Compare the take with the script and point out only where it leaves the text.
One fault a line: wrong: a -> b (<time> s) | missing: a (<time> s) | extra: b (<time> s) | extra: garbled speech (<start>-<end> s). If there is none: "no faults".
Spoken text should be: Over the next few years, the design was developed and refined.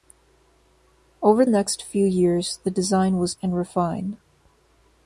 missing: the (1.4 s)
missing: developed (3.3 s)